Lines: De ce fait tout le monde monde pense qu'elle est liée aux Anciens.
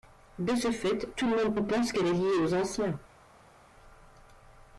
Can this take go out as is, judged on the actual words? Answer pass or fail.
pass